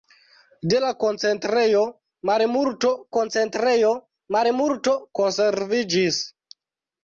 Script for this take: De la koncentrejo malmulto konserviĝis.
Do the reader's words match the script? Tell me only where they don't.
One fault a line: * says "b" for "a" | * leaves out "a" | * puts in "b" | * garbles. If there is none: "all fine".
* puts in "koncentrejo malmulto"